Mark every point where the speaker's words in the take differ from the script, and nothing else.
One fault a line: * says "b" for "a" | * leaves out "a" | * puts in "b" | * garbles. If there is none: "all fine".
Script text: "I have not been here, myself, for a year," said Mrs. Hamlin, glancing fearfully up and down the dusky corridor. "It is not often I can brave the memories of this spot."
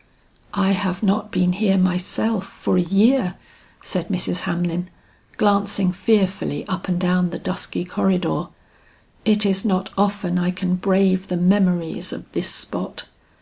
all fine